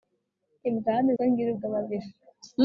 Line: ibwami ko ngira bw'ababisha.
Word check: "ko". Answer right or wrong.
right